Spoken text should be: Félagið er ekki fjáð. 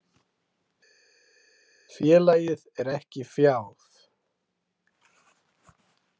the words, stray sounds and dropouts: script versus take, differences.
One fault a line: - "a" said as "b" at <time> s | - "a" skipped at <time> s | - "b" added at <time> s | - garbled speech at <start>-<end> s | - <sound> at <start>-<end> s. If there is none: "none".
none